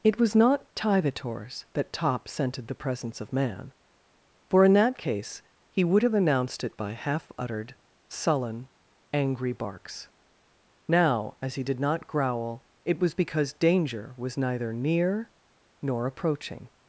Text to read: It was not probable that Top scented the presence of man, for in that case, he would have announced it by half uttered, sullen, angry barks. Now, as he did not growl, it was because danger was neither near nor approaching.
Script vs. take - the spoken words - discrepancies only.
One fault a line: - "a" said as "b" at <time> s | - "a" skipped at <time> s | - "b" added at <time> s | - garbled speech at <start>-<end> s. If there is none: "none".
- "probable" said as "tivators" at 0.7 s